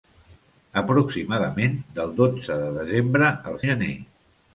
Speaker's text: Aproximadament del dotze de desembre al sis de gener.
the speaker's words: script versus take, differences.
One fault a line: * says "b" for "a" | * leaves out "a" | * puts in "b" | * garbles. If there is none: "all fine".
* leaves out "sis de"